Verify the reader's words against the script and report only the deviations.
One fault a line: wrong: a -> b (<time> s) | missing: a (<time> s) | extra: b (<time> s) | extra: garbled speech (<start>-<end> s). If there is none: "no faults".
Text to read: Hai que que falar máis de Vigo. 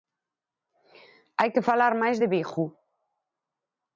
missing: que (1.6 s)